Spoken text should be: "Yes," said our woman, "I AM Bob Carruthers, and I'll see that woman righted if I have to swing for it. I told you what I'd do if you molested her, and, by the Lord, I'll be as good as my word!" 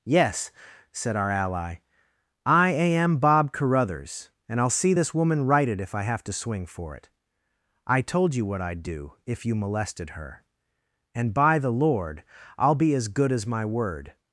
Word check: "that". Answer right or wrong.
wrong